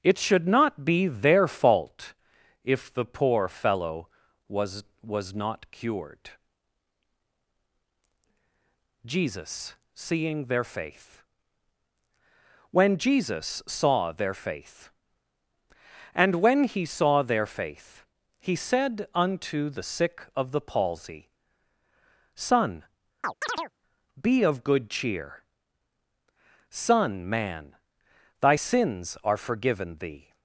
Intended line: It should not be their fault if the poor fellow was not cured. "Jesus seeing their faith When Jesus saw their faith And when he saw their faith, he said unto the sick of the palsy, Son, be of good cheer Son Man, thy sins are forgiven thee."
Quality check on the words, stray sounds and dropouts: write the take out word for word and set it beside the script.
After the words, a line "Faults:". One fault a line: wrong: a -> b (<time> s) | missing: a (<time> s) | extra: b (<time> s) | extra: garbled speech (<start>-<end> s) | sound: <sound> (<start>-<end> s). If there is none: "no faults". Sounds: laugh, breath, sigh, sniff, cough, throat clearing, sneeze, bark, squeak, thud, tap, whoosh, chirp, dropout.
It should not be their fault if the poor fellow was was not cured. "Jesus seeing their faith When Jesus saw their faith And when he saw their faith, he said unto the sick of the palsy, Son, be of good cheer Son Man, thy sins are forgiven thee."
Faults:
extra: was (5.0 s)
sound: chirp (23.2-23.7 s)